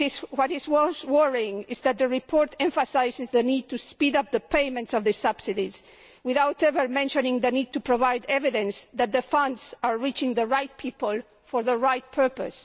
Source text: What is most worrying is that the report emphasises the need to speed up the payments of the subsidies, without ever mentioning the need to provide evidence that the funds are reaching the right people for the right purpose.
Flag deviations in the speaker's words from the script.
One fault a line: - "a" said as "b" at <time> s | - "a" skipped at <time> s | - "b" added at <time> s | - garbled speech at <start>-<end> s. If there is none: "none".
none